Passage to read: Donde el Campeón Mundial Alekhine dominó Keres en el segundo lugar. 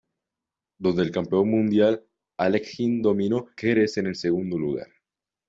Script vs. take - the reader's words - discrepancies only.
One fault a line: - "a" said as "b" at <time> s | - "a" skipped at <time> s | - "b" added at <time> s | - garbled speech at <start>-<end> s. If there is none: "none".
none